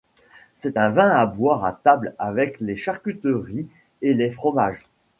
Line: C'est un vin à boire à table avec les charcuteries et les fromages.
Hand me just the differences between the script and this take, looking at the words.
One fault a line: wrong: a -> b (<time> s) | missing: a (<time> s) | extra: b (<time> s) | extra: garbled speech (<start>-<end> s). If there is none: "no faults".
no faults